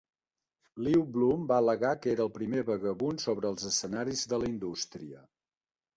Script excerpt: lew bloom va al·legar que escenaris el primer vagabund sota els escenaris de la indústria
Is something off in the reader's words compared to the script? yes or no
yes